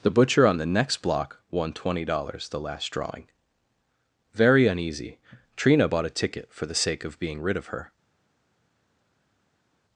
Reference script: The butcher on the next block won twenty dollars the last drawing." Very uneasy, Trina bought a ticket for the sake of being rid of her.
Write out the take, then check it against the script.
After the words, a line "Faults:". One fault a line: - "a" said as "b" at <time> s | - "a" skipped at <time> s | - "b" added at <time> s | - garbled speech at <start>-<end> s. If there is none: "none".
The butcher on the next block won twenty dollars the last drawing." Very uneasy, Trina bought a ticket for the sake of being rid of her.
Faults:
none